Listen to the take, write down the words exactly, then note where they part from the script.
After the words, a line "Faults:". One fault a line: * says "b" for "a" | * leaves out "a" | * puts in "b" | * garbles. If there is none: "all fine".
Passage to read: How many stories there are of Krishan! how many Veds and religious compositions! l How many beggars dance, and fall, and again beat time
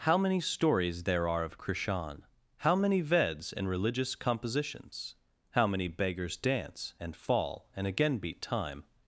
How many stories there are of Krishan! how many Veds and religious compositions! How many beggars dance, and fall, and again beat time
Faults:
* leaves out "l"